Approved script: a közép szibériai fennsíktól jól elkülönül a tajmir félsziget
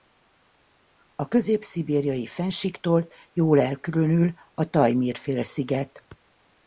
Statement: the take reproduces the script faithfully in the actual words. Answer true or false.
true